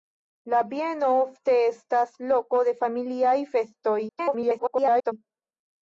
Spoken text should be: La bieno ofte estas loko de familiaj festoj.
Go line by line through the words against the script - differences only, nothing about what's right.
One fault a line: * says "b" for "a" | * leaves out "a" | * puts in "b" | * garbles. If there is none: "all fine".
* garbles